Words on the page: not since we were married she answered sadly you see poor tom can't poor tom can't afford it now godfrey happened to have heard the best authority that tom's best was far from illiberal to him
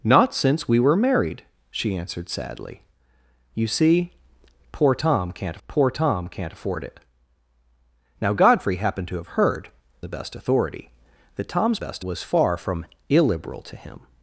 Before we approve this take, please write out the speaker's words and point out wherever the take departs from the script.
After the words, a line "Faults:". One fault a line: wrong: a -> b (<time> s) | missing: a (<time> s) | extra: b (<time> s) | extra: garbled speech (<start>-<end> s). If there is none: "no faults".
not since we were married she answered sadly you see poor tom can't poor tom can't afford it now godfrey happened to have heard the best authority that tom's best was far from illiberal to him
Faults:
no faults